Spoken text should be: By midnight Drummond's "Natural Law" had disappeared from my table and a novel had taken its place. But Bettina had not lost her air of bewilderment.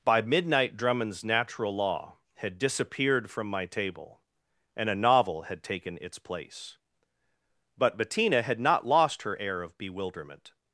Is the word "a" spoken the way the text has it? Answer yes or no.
yes